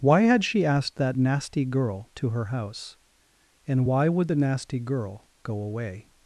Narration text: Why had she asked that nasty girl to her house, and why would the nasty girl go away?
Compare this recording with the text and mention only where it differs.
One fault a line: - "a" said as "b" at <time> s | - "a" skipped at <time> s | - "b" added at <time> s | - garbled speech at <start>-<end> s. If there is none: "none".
none